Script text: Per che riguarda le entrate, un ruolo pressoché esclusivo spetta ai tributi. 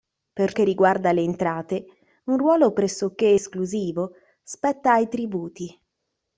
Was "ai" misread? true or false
false